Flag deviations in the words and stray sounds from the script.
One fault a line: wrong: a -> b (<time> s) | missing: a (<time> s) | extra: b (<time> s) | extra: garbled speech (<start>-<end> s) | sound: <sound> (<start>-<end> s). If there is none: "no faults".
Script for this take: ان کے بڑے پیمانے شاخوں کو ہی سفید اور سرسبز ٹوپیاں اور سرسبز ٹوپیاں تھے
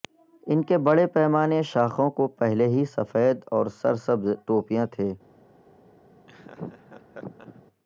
extra: پہلے (2.4 s)
missing: اور سرسبز ٹوپیاں (4.8 s)
sound: laugh (6.3-7.6 s)